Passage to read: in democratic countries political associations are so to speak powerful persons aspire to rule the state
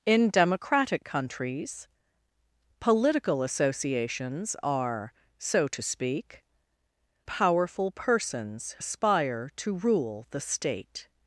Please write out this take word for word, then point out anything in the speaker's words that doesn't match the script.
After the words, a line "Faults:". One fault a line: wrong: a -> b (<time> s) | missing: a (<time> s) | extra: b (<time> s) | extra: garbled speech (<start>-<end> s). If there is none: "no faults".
in democratic countries political associations are so to speak powerful persons aspire to rule the state
Faults:
no faults